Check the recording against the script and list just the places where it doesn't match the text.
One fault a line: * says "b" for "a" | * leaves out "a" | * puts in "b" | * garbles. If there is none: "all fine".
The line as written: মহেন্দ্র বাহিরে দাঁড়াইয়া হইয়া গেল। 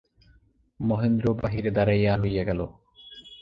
all fine